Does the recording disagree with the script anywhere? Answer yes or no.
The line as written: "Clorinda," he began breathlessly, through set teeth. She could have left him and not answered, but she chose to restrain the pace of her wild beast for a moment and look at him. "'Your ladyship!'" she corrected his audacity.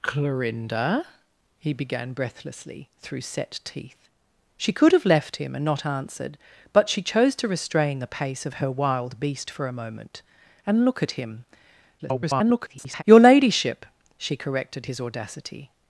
yes